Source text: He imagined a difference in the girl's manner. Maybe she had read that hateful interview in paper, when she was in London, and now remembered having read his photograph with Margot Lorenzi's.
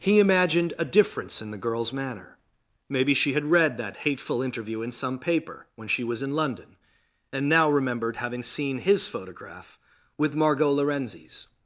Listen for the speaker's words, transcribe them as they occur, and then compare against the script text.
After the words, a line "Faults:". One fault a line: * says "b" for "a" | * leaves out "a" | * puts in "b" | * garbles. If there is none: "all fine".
He imagined a difference in the girl's manner. Maybe she had read that hateful interview in some paper, when she was in London, and now remembered having seen his photograph with Margot Lorenzi's.
Faults:
* puts in "some"
* says "seen" for "read"